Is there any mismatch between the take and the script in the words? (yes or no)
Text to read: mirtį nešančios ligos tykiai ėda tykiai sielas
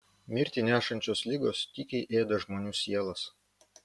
yes